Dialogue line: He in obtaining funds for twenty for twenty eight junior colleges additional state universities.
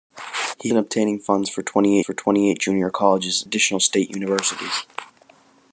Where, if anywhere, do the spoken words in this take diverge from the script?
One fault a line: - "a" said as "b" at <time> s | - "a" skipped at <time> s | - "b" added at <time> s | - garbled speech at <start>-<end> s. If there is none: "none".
none